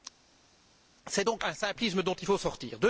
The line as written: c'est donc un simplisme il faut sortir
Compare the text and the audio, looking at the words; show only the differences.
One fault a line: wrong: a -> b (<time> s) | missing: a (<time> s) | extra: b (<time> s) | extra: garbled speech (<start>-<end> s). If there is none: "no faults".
extra: dont (2.0 s)